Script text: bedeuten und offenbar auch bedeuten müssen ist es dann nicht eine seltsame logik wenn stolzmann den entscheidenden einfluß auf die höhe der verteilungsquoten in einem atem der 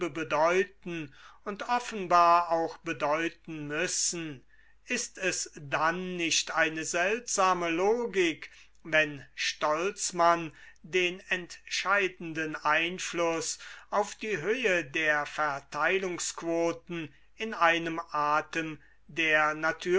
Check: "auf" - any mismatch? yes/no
no